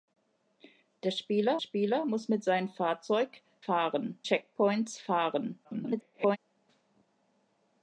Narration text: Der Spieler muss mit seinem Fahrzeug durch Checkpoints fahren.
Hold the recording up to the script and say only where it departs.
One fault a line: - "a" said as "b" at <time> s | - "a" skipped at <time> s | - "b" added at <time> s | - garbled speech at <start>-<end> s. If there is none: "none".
- "Spieler" added at 1.6 s
- "durch" said as "fahren" at 3.6 s
- garbled speech at 5.6-6.4 s